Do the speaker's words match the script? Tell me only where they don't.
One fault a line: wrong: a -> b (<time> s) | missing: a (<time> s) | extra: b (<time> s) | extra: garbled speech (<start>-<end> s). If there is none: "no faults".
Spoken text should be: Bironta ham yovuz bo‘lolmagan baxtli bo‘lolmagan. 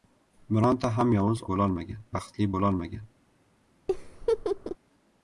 no faults